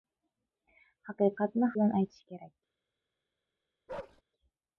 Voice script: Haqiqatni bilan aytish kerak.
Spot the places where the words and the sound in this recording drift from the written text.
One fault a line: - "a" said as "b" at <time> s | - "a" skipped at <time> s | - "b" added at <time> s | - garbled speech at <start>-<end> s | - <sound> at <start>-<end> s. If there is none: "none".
- bark at 3.9-4.2 s